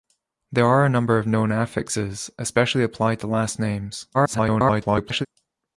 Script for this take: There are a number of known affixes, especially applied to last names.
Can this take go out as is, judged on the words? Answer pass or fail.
fail